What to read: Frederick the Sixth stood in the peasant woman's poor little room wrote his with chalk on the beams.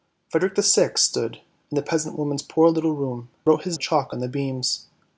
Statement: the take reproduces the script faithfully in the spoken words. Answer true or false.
true